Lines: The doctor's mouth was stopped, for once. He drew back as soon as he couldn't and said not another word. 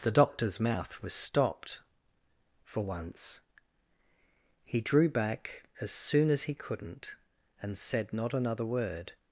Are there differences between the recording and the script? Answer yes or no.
no